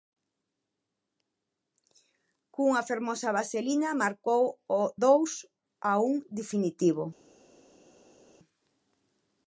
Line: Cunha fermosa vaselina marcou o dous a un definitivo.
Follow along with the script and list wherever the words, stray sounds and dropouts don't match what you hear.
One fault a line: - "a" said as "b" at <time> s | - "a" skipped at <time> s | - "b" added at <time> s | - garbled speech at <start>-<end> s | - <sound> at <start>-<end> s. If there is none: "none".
none